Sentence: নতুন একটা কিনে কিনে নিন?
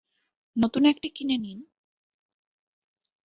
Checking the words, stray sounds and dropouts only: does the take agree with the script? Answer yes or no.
no